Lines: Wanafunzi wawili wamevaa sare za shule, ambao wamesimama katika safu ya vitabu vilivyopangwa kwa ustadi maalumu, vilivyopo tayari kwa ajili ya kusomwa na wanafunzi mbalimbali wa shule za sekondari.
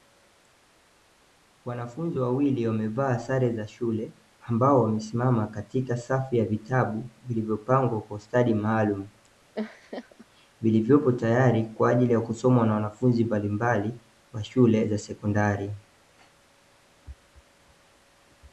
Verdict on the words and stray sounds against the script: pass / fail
fail